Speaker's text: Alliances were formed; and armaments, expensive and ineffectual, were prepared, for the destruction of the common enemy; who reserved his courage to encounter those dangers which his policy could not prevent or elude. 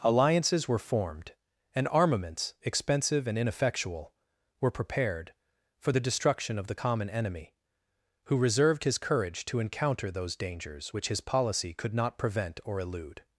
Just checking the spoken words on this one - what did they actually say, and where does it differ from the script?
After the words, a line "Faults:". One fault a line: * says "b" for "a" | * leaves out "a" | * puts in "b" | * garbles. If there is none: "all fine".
Alliances were formed; and armaments, expensive and ineffectual, were prepared, for the destruction of the common enemy; who reserved his courage to encounter those dangers which his policy could not prevent or elude.
Faults:
all fine